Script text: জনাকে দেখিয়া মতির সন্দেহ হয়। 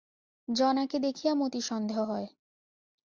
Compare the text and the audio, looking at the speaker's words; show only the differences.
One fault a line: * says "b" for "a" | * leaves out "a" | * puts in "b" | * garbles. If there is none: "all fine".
all fine